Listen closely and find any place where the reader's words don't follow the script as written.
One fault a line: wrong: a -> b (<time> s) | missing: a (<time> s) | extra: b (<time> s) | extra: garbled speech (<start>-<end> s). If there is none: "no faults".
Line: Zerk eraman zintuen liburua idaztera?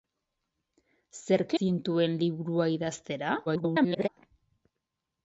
missing: eraman (1.5 s)
extra: garbled speech (3.5-4.1 s)